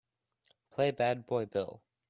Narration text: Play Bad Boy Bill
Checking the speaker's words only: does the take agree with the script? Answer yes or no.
yes